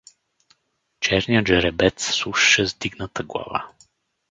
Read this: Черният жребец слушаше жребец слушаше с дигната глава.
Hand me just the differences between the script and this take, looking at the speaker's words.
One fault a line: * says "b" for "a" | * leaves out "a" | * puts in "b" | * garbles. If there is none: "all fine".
* leaves out "жребец слушаше"